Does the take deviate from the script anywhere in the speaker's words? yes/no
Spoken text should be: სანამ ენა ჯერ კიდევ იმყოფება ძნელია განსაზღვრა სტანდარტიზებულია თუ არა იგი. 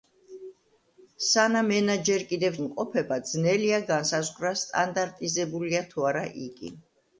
no